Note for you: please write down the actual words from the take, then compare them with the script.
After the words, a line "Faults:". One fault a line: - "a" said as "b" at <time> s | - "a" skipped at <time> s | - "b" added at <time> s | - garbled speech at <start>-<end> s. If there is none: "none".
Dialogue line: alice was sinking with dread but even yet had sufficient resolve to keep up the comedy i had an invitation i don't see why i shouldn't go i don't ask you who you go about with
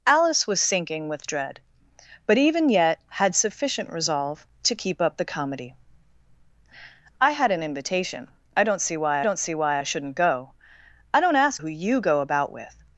alice was sinking with dread but even yet had sufficient resolve to keep up the comedy i had an invitation i don't see why don't see why i shouldn't go i don't ask who you go about with
Faults:
- "don't see why" added at 9.2 s
- "you" skipped at 11.6 s